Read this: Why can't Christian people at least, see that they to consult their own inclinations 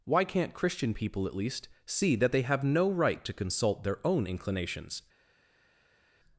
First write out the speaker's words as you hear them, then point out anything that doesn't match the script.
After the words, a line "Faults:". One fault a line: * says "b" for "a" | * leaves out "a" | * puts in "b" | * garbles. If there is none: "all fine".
Why can't Christian people at least, see that they have no right to consult their own inclinations
Faults:
* puts in "have no right"